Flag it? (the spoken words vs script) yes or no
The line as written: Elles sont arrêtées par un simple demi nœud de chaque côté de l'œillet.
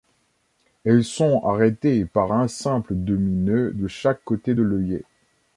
no